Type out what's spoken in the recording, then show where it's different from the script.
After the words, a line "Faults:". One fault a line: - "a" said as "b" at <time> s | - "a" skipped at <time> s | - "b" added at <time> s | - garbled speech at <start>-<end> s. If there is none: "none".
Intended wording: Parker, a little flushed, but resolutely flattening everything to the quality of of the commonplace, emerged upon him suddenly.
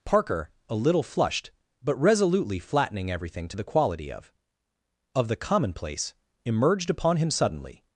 Parker, a little flushed, but resolutely flattening everything to the quality of of the commonplace, emerged upon him suddenly.
Faults:
none